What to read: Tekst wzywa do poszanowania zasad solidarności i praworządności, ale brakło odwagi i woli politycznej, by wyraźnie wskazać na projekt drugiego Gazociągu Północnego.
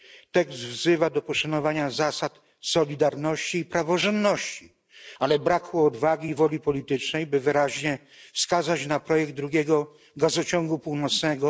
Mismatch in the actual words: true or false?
false